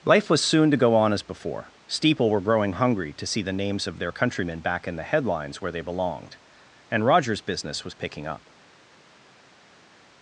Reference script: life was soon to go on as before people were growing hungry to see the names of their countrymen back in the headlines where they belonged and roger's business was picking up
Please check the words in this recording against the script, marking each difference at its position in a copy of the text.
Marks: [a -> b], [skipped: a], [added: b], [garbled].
life was soon to go on as before [people -> steeple] were growing hungry to see the names of their countrymen back in the headlines where they belonged and roger's business was picking up